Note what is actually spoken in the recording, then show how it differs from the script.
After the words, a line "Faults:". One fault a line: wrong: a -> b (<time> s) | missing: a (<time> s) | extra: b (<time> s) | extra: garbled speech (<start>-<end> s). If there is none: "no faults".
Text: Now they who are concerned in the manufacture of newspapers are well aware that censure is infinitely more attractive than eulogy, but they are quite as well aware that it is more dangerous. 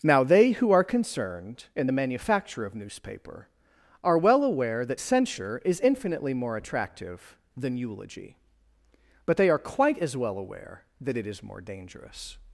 Now they who are concerned in the manufacture of newspaper are well aware that censure is infinitely more attractive than eulogy, but they are quite as well aware that it is more dangerous.
Faults:
wrong: newspapers -> newspaper (2.7 s)